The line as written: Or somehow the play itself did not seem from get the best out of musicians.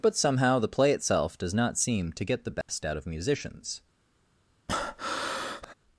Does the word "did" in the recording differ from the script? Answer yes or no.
yes